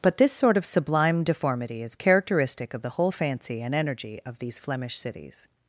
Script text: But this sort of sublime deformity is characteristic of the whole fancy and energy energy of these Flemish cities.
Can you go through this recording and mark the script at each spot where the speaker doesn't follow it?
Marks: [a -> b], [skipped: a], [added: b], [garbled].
But this sort of sublime deformity is characteristic of the whole fancy and energy [skipped: energy] of these Flemish cities.